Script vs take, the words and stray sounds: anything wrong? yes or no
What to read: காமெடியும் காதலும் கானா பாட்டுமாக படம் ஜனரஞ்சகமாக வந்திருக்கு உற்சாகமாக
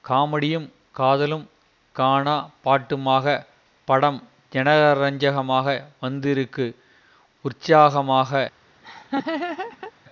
yes